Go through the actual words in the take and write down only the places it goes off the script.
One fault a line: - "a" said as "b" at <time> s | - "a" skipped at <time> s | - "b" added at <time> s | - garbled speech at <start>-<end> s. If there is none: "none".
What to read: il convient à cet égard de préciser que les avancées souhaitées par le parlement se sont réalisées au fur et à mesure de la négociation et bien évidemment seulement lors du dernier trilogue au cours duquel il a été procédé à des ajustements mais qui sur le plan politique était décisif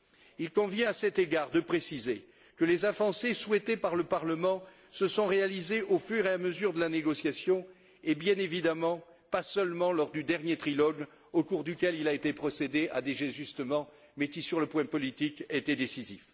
- "pas" added at 9.3 s